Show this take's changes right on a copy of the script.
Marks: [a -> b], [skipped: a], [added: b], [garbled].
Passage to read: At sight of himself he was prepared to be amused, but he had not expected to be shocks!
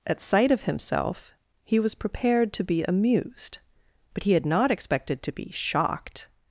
At sight of himself he was prepared to be amused, but he had not expected to be [shocks! -> shocked]